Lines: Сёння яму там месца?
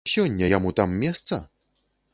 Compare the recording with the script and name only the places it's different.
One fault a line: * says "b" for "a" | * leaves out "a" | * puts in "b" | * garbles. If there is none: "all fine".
all fine